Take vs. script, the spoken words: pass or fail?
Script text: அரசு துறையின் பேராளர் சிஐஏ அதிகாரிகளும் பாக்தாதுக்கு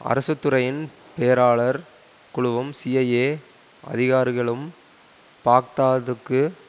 fail